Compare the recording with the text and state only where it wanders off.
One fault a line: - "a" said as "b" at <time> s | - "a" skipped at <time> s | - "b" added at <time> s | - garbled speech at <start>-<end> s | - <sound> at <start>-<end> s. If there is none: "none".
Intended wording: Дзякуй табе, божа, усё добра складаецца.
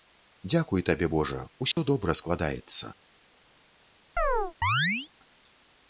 - dropout at 1.7-1.8 s
- chirp at 4.2-5.1 s